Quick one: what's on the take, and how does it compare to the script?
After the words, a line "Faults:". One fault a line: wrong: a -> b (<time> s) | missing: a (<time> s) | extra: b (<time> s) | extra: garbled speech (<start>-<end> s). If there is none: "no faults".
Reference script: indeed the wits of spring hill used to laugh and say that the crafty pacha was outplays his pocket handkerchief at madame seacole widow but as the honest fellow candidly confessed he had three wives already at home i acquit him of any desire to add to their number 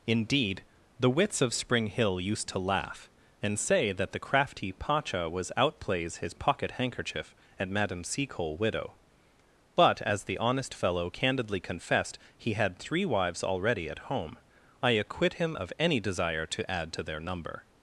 indeed the wits of spring hill used to laugh and say that the crafty pacha was outplays his pocket handkerchief at madame seacole widow but as the honest fellow candidly confessed he had three wives already at home i acquit him of any desire to add to their number
Faults:
no faults